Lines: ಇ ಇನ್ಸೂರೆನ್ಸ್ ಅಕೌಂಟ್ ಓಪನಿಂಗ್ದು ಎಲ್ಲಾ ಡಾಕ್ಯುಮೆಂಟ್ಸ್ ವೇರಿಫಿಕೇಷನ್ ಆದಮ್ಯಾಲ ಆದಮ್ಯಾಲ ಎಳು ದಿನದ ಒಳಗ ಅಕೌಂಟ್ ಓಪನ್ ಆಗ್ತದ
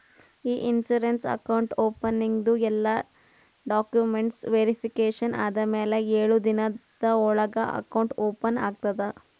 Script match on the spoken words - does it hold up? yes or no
no